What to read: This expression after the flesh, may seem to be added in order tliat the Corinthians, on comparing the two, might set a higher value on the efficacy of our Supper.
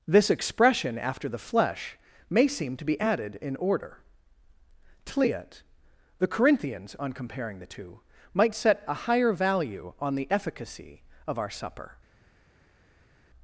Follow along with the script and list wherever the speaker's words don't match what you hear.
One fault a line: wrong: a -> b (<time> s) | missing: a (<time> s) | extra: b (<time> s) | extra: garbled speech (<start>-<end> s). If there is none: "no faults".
no faults